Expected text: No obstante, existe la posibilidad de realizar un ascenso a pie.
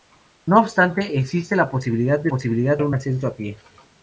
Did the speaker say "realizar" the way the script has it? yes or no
no